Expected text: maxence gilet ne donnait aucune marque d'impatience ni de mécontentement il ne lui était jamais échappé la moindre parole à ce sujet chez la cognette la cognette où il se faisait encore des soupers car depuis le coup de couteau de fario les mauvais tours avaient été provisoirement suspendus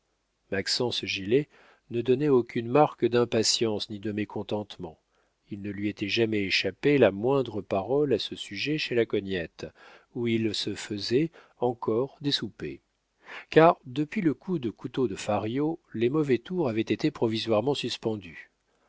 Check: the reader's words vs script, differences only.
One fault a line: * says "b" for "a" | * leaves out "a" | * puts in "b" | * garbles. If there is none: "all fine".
* leaves out "la cognette"